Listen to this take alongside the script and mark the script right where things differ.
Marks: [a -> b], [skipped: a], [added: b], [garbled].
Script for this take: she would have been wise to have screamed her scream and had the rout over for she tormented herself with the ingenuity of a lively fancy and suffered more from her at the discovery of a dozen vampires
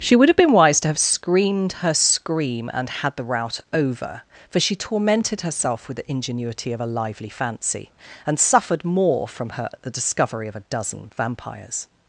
she would have been wise to have screamed her scream and had the rout over for she tormented herself with the ingenuity of a lively fancy and suffered more from her at the discovery of a dozen vampires